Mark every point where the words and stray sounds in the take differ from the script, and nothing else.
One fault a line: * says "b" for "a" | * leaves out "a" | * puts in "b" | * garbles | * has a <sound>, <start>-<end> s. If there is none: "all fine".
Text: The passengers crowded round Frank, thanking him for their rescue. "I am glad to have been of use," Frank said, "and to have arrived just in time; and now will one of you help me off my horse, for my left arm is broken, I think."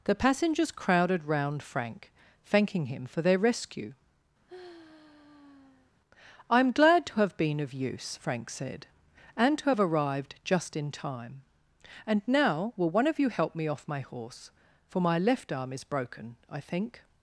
* has a sigh, 4.5-5.9 s